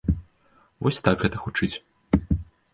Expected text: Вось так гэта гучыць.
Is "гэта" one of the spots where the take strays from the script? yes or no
no